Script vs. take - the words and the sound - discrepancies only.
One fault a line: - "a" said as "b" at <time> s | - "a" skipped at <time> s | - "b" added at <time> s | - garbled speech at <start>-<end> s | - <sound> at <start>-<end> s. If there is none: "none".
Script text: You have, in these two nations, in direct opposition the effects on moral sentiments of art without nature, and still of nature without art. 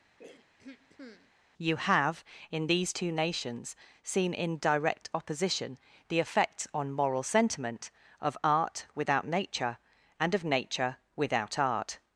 - throat clearing at 0.2-1.3 s
- "seen" added at 4.0 s
- "sentiments" said as "sentiment" at 7.2 s
- "still" skipped at 10.3 s